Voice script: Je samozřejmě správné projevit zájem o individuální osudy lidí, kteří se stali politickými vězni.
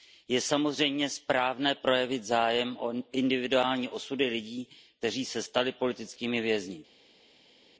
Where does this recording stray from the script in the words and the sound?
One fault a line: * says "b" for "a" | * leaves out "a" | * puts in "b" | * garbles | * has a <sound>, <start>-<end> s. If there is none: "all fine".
all fine